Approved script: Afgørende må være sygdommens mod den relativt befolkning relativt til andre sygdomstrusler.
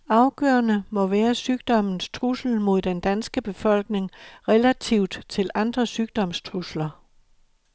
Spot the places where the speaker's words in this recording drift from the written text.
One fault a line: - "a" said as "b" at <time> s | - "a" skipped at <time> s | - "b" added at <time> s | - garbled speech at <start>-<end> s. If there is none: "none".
- "trussel" added at 2.1 s
- "relativt" said as "danske" at 3.0 s